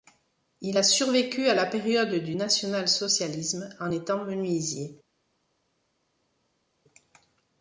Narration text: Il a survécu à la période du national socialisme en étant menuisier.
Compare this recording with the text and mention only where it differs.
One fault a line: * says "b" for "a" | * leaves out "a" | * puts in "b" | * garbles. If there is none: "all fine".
all fine